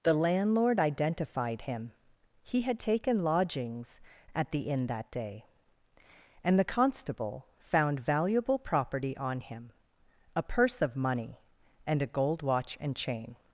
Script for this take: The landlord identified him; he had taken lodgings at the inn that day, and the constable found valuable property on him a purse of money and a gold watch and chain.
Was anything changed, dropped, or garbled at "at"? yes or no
no